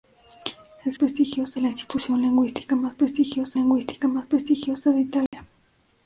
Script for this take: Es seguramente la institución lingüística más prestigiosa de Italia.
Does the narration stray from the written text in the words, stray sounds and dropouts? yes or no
yes